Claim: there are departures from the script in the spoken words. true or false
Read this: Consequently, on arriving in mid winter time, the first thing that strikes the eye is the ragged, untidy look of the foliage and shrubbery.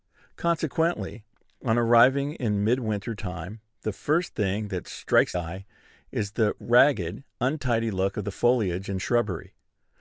true